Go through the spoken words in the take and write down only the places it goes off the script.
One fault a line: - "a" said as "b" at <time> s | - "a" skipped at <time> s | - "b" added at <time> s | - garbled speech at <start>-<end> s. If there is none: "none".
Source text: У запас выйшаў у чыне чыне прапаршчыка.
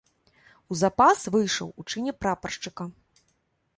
- "чыне" skipped at 2.1 s